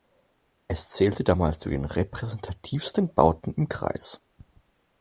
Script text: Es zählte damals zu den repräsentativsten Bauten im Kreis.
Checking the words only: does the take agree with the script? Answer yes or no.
yes